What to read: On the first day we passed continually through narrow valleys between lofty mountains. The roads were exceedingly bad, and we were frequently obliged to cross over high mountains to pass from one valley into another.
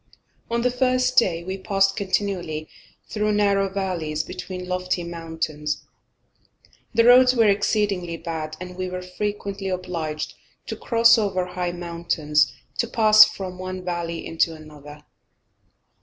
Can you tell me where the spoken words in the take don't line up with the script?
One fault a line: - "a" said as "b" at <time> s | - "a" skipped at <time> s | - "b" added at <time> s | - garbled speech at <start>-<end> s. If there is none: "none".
none